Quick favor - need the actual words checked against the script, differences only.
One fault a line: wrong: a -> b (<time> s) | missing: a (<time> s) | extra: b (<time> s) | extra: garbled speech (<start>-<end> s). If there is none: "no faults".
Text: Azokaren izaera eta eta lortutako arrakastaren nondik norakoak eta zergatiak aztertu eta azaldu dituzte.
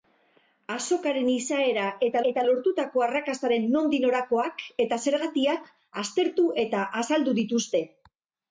no faults